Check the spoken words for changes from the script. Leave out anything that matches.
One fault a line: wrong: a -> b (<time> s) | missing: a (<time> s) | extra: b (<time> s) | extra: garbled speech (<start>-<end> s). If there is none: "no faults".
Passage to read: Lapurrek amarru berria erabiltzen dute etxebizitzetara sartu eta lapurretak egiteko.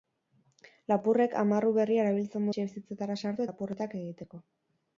missing: dute (2.5 s)
missing: eta (3.5 s)